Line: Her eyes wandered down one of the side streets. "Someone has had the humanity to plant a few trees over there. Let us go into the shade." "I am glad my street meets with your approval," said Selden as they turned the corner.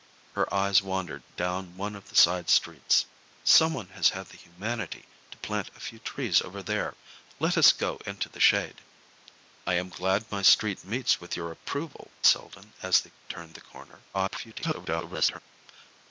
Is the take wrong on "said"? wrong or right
wrong